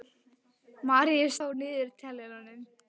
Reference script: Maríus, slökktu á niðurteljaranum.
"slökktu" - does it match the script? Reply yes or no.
no